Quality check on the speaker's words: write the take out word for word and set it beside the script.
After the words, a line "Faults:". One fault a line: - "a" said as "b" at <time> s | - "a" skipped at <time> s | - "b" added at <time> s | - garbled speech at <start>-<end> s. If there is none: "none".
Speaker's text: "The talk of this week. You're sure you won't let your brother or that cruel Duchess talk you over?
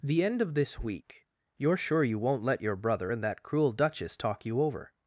"The end of this week. You're sure you won't let your brother and that cruel Duchess talk you over?
Faults:
- "talk" said as "end" at 0.2 s
- "or" said as "and" at 3.1 s